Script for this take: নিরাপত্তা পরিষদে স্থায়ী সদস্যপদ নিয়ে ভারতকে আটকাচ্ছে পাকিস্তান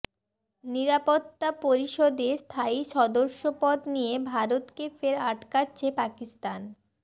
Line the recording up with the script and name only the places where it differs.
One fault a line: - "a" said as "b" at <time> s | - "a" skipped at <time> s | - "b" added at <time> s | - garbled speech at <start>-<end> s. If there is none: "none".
- "ফের" added at 5.0 s